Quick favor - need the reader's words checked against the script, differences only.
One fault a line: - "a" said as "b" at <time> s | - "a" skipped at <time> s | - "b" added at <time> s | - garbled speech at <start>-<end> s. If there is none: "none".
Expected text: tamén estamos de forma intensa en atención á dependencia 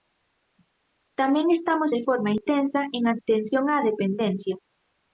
none